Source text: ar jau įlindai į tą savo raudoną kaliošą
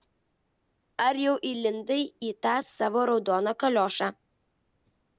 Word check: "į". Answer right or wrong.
right